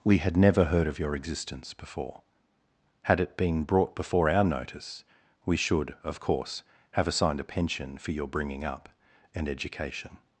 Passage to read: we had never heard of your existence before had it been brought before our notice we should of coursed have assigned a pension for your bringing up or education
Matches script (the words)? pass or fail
fail